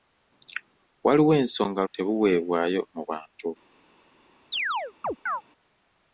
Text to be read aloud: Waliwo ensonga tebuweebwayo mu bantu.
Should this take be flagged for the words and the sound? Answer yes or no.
yes